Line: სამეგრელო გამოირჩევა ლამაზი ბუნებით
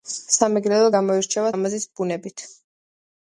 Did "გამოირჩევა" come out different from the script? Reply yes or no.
no